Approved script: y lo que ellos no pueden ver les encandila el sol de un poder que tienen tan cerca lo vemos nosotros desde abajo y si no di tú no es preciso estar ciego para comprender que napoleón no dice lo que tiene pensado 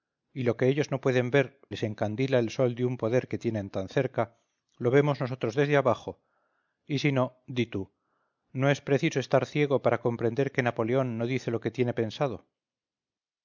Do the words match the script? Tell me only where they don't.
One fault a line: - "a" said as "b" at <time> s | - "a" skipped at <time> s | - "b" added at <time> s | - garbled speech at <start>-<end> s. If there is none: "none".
none